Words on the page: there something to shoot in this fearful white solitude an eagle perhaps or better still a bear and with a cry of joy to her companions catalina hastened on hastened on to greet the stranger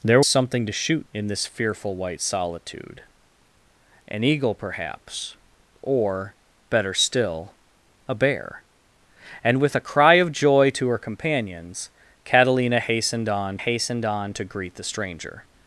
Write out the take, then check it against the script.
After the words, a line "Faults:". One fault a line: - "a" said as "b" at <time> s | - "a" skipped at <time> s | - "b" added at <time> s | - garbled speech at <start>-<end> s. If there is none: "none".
there something to shoot in this fearful white solitude an eagle perhaps or better still a bear and with a cry of joy to her companions catalina hastened on hastened on to greet the stranger
Faults:
none